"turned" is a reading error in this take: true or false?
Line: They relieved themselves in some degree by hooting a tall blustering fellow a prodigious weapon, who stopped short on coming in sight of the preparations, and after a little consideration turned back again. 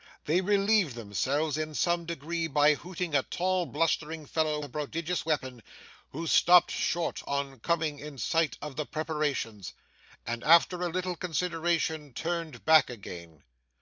false